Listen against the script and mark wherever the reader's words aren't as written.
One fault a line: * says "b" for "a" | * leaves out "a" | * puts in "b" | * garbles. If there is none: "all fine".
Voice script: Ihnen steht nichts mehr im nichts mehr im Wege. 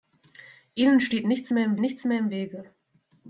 all fine